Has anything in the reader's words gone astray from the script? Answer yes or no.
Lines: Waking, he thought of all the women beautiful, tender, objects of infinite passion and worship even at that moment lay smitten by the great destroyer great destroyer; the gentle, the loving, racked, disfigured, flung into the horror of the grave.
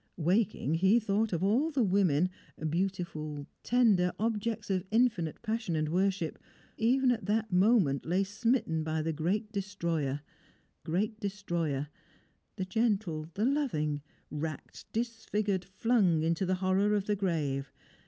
no